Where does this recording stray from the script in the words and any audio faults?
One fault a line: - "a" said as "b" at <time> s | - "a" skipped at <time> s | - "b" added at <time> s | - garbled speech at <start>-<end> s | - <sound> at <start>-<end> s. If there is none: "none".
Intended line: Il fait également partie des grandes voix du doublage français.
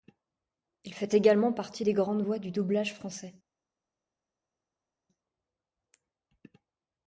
none